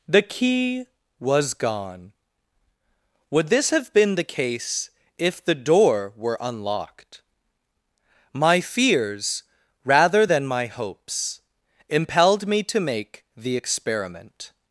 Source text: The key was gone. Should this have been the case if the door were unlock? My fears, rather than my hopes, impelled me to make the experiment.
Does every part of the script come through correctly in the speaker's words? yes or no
no